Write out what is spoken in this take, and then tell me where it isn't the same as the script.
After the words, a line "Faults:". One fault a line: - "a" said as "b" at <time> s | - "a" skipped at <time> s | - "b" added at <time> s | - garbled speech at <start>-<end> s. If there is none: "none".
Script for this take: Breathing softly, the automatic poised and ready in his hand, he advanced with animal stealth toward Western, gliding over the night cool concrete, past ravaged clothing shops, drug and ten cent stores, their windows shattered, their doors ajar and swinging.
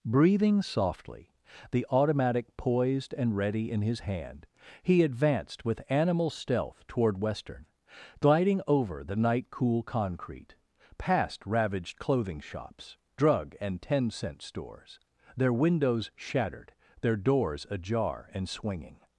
Breathing softly, the automatic poised and ready in his hand, he advanced with animal stealth toward Western, gliding over the night cool concrete, past ravaged clothing shops, drug and ten cent stores, their windows shattered, their doors ajar and swinging.
Faults:
none